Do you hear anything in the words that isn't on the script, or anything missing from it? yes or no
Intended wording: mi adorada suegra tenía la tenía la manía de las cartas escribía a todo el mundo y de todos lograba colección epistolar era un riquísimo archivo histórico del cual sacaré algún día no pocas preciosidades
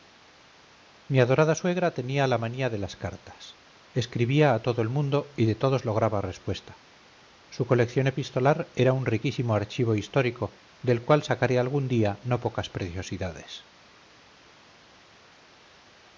yes